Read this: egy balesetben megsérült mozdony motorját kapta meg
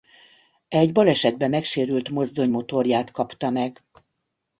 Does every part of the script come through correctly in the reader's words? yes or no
yes